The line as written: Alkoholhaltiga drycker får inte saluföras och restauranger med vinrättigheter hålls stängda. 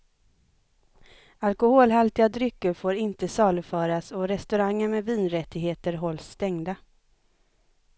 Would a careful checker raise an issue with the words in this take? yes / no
no